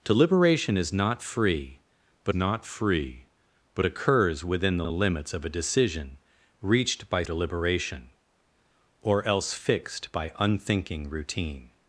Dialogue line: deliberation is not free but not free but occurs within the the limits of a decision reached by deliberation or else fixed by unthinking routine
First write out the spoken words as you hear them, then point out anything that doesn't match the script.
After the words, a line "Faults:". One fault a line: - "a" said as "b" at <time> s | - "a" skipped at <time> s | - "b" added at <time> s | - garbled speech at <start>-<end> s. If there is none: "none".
deliberation is not free but not free but occurs within the the limits of a decision reached by deliberation or else fixed by unthinking routine
Faults:
none